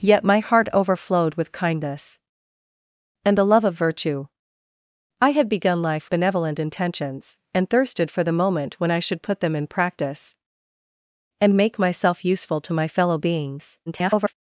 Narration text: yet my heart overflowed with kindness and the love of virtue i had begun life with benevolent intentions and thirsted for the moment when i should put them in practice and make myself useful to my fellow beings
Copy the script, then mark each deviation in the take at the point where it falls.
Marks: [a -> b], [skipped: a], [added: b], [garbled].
yet my heart overflowed with kindness and the love of virtue i had begun life [skipped: with] benevolent intentions and thirsted for the moment when i should put them in practice and make myself useful to my fellow beings [garbled]